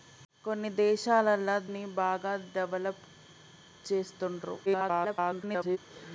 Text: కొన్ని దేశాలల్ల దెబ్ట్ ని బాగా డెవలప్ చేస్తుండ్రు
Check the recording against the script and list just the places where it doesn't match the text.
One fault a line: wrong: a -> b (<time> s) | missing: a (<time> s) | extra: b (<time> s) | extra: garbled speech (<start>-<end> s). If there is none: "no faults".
missing: దెబ్ట్ (1.5 s)
extra: garbled speech (4.7-5.8 s)